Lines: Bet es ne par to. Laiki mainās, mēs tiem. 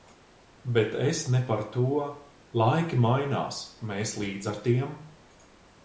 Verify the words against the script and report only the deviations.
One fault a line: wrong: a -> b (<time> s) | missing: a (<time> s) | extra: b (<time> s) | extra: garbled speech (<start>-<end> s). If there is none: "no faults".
extra: līdz ar (4.2 s)